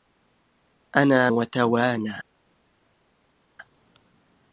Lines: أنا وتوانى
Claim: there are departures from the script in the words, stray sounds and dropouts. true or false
false